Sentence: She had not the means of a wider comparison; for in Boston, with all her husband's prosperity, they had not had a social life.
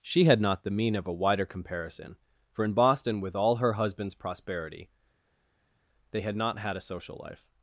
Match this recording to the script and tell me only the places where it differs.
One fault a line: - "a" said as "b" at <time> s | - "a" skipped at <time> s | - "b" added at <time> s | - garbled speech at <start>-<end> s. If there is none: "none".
- "means" said as "mean" at 0.7 s